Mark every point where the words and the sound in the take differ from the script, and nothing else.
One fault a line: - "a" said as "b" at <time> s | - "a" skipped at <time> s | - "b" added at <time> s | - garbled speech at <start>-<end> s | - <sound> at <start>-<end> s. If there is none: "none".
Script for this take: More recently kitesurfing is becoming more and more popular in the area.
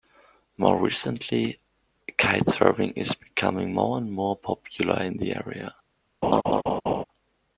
- laugh at 6.2-7.0 s